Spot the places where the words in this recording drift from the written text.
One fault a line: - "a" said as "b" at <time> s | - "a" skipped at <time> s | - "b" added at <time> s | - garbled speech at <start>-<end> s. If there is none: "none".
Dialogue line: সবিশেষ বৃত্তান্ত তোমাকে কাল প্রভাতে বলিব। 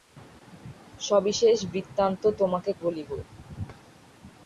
- "কাল প্রভাতে" skipped at 2.7 s